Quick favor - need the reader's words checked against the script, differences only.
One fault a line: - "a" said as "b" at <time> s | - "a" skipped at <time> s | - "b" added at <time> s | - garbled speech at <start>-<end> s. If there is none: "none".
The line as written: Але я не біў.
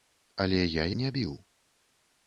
none